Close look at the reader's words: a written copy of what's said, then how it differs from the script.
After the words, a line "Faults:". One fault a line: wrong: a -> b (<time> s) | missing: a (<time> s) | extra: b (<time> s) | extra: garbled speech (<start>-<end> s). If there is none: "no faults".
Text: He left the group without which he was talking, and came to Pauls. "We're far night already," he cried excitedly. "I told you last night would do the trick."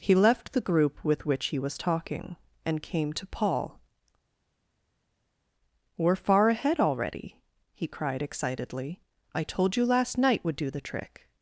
He left the group with which he was talking, and came to Paul. "We're far ahead already," he cried excitedly. "I told you last night would do the trick."
Faults:
wrong: without -> with (1.1 s)
wrong: Pauls -> Paul (3.3 s)
wrong: night -> ahead (6.5 s)